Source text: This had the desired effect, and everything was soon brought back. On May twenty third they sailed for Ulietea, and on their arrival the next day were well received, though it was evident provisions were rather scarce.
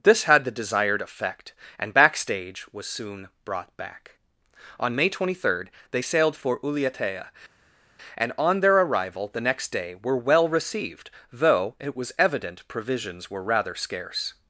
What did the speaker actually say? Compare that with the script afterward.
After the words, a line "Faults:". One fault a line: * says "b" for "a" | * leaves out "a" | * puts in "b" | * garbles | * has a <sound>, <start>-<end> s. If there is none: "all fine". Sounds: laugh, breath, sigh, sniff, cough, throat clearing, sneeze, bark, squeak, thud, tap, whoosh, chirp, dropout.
This had the desired effect, and backstage was soon brought back. On May twenty third they sailed for Ulietea, and on their arrival the next day were well received, though it was evident provisions were rather scarce.
Faults:
* says "backstage" for "everything"